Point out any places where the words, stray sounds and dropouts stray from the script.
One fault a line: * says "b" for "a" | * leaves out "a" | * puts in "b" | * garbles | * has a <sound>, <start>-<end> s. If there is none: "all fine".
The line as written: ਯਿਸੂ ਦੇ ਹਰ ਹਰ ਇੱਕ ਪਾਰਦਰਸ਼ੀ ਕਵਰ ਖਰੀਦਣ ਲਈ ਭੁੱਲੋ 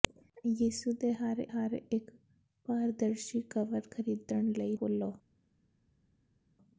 all fine